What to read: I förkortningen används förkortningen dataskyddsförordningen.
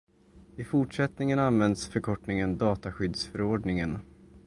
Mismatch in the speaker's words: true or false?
true